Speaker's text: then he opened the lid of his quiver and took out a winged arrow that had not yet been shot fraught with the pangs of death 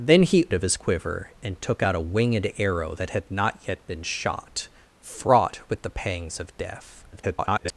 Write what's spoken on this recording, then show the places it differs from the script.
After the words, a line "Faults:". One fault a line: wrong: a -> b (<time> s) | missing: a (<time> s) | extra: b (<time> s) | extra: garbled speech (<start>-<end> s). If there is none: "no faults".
then he of his quiver and took out a winged arrow that had not yet been shot fraught with the pangs of death [garbled]
Faults:
missing: opened the lid (0.5 s)
extra: garbled speech (7.1-7.7 s)